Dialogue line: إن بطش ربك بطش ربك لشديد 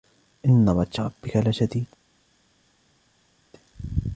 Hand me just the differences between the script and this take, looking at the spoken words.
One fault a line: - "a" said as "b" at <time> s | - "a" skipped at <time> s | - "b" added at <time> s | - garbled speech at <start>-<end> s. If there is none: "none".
- "بطش ربك" skipped at 1.4 s